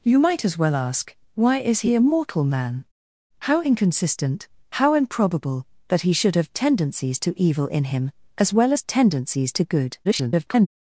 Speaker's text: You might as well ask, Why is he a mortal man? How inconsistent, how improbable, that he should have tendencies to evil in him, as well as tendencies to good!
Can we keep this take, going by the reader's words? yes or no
no